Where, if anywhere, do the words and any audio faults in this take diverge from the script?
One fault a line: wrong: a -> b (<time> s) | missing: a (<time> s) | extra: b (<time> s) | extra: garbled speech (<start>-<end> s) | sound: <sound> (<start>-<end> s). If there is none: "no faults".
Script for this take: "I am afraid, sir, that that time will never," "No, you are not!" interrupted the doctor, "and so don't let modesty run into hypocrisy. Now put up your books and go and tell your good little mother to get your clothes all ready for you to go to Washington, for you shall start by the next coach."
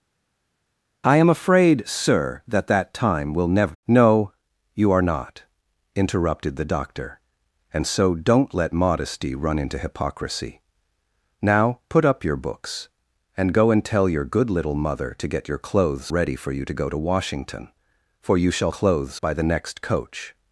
missing: all (16.1 s)
wrong: start -> clothes (18.7 s)